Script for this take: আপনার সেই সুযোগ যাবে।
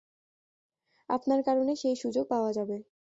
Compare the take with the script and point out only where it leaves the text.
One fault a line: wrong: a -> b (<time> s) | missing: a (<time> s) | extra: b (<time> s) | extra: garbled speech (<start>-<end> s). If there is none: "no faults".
extra: কারণে (1.4 s)
extra: পাওয়া (2.3 s)